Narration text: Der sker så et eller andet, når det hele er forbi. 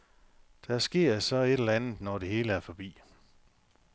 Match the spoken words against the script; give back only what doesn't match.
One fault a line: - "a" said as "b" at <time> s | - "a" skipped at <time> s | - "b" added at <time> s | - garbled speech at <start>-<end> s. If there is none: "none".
none